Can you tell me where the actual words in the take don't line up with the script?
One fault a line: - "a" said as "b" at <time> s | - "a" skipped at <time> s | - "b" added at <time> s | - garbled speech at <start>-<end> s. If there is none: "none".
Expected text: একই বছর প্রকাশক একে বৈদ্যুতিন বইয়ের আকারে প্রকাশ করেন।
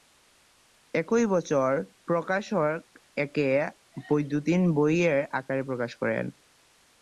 none